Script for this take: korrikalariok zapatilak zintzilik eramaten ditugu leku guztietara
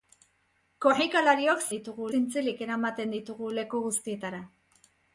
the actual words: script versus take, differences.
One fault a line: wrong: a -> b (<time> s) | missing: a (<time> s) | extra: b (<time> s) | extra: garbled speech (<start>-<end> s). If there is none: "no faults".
wrong: zapatilak -> ditugu (1.7 s)